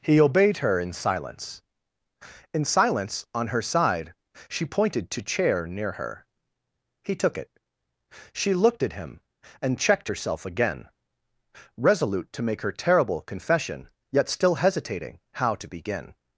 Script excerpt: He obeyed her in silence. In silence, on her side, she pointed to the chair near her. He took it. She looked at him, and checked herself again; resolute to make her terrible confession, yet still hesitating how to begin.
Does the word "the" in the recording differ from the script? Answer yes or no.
yes